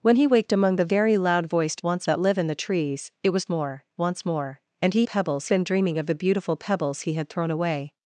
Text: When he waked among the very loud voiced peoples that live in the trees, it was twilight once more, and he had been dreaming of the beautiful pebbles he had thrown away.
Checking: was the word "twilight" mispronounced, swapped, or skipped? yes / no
yes